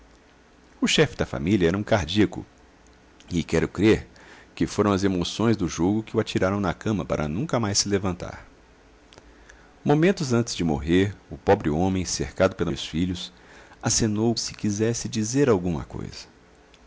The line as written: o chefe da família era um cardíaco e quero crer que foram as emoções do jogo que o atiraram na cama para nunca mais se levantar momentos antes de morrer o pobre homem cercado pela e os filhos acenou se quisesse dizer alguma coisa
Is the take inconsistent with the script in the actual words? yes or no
no